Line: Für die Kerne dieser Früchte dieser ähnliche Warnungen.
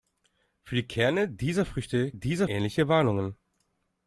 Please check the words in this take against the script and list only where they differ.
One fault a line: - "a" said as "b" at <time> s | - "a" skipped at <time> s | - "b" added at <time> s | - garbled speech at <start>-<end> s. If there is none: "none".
none